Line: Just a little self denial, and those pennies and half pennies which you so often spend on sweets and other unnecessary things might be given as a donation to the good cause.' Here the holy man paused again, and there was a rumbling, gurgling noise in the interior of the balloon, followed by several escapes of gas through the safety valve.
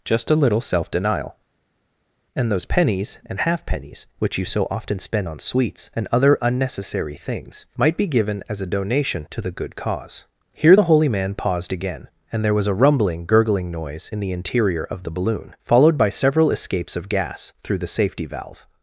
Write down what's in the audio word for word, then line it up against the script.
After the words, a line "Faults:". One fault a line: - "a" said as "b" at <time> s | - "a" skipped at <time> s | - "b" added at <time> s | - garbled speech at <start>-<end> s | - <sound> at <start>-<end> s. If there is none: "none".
Just a little self denial, and those pennies and half pennies which you so often spend on sweets and other unnecessary things might be given as a donation to the good cause.' Here the holy man paused again, and there was a rumbling, gurgling noise in the interior of the balloon, followed by several escapes of gas through the safety valve.
Faults:
none